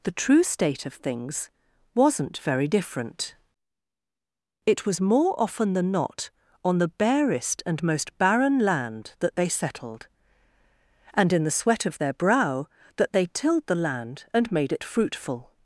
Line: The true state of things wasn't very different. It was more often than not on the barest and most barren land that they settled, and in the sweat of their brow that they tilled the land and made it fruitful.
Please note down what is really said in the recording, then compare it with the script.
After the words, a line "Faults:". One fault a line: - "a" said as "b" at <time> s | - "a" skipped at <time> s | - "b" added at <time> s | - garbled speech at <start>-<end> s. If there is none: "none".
The true state of things wasn't very different. It was more often than not on the barest and most barren land that they settled, and in the sweat of their brow that they tilled the land and made it fruitful.
Faults:
none